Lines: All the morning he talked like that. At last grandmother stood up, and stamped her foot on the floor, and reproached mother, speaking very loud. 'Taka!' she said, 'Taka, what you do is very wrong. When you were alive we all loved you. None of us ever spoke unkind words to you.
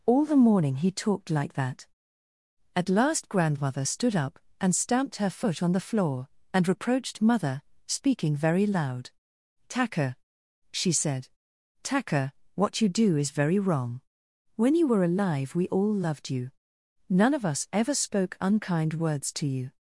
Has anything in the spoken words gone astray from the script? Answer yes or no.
no